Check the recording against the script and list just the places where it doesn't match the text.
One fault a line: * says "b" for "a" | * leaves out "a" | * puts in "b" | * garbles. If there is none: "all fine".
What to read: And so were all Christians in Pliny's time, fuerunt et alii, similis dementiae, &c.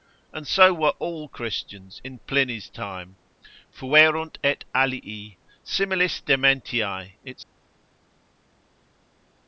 all fine